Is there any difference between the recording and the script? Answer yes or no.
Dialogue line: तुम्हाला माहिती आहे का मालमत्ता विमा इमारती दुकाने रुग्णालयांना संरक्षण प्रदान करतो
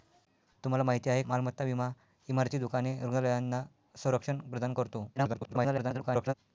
yes